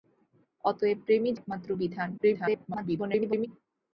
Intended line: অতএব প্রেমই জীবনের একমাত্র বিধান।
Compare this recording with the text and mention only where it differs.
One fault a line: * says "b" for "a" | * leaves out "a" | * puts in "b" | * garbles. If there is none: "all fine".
* leaves out "জীবনের"
* garbles